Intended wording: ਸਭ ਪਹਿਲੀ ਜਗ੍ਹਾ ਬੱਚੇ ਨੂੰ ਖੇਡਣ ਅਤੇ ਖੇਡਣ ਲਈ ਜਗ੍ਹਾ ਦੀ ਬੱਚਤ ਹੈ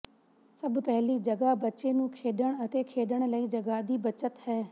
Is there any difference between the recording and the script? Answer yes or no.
no